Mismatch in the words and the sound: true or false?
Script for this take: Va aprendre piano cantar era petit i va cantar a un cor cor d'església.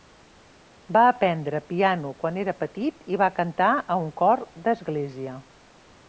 true